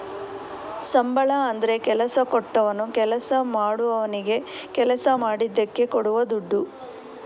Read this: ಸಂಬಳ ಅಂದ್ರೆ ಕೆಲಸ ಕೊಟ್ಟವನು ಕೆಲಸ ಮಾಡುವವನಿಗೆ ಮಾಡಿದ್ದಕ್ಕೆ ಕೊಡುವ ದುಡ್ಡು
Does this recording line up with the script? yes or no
no